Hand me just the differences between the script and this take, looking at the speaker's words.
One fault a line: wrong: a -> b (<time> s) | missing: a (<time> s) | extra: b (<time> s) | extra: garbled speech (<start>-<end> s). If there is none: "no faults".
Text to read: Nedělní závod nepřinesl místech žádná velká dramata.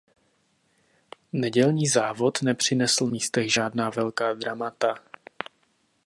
no faults